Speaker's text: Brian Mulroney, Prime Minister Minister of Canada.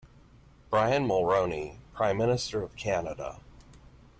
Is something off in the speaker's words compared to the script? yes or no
yes